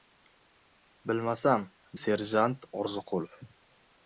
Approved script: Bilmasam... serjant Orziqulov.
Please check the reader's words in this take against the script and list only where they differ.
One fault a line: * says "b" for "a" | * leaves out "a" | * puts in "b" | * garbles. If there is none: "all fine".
all fine